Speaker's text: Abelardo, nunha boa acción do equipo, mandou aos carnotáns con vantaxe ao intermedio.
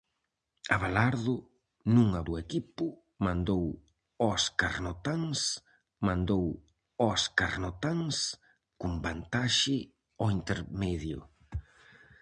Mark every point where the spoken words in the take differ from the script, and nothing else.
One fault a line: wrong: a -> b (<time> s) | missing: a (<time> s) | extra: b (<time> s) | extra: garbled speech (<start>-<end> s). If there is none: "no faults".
wrong: boa acción do equipo -> do equipo mandou aos carnotáns (2.3 s)